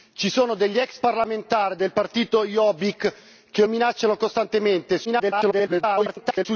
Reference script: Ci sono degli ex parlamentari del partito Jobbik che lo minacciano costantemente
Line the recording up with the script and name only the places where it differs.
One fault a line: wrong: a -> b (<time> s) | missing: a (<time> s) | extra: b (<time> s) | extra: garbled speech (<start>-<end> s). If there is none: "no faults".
missing: lo (3.6 s)
extra: garbled speech (5.0-6.5 s)